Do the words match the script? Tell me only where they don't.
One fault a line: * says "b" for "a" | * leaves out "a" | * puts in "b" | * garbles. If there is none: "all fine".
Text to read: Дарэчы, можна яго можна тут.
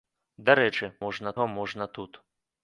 all fine